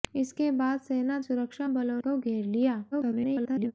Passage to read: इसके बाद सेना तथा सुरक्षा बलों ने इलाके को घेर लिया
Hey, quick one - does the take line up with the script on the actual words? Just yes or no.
no